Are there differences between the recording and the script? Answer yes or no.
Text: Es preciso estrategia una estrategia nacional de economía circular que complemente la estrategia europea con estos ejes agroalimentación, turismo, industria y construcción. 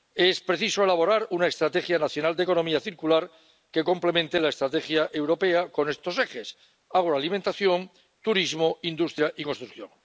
yes